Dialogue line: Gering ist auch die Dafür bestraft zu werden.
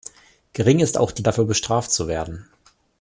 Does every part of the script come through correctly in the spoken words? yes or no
yes